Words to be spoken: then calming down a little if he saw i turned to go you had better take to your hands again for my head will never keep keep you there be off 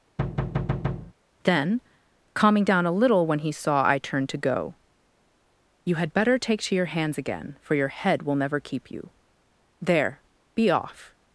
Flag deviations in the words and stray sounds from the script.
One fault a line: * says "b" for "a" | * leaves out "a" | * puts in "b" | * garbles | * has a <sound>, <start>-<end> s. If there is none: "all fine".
* has a thud, 0.2-1.1 s
* says "when" for "if"
* says "your" for "my"
* leaves out "keep"